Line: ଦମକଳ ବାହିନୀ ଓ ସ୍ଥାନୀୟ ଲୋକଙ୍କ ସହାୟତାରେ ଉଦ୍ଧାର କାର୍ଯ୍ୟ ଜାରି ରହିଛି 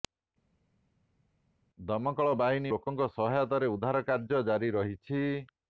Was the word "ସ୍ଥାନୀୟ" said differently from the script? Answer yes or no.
yes